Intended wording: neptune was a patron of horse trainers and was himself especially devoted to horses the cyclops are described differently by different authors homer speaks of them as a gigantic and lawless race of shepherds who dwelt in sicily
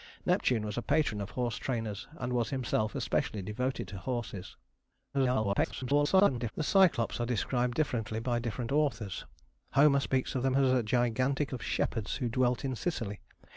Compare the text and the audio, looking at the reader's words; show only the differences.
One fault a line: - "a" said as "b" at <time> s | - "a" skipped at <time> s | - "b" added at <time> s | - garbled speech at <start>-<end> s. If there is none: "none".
- garbled speech at 5.1-6.5 s
- "and lawless race" skipped at 11.5 s